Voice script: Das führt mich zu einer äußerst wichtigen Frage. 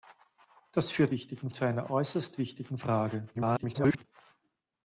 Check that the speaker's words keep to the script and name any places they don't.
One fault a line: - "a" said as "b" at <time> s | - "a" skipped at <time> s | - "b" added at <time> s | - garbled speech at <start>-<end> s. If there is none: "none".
- "mich" said as "wichtigen" at 1.1 s
- garbled speech at 3.3-4.0 s